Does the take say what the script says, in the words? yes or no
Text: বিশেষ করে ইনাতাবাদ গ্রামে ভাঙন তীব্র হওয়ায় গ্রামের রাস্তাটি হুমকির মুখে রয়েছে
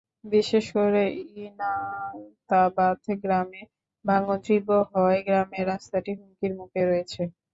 yes